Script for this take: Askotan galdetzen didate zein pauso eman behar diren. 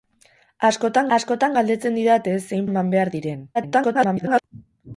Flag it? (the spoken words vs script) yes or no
yes